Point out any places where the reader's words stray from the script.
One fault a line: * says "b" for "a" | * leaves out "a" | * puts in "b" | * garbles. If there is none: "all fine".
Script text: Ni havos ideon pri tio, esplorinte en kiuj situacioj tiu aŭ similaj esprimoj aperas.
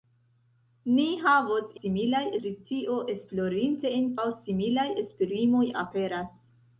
* says "similaj" for "ideon"
* leaves out "kiuj situacioj tiu"